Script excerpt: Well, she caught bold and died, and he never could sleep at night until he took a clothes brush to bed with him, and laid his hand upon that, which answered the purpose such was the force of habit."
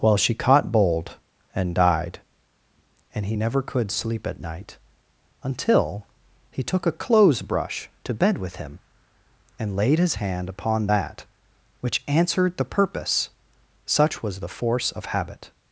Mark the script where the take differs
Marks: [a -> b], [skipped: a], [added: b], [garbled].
Well, she caught bold and died, and he never could sleep at night until he took a clothes brush to bed with him, and laid his hand upon that, which answered the purpose such was the force of habit."